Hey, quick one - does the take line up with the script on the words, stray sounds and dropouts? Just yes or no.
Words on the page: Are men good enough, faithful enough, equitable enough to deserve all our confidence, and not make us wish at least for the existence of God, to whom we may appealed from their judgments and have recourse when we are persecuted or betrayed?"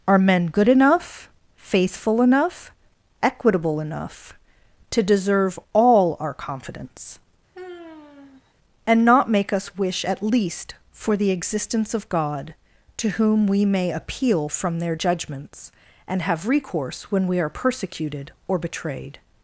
no